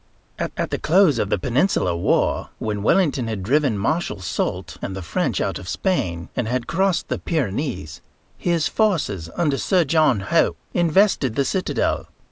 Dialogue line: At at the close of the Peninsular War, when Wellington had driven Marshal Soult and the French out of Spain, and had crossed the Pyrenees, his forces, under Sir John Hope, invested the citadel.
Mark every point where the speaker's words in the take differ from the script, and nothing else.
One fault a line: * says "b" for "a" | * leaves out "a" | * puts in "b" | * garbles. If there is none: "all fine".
all fine